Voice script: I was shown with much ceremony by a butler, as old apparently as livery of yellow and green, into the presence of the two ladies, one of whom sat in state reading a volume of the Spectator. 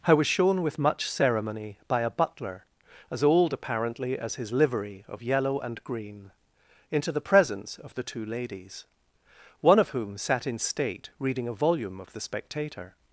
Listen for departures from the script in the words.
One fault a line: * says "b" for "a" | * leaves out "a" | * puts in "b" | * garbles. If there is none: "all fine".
* puts in "his"